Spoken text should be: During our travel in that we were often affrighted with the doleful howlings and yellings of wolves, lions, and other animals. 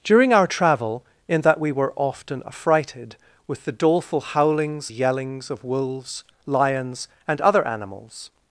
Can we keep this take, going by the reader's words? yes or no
no